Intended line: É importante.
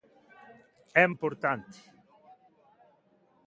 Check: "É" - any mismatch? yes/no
no